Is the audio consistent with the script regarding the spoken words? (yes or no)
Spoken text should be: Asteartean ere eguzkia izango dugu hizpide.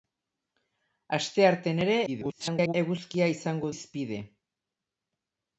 no